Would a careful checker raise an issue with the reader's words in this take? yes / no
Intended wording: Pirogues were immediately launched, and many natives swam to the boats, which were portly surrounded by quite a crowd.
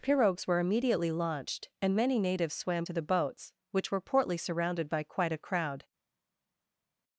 no